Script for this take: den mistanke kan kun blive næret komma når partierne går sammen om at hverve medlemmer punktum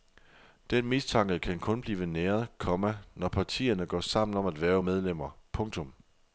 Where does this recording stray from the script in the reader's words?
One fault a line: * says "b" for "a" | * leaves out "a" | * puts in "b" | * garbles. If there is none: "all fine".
all fine